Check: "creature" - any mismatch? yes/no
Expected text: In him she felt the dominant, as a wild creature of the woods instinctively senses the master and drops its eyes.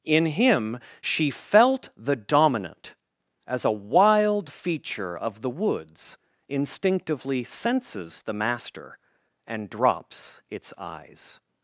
yes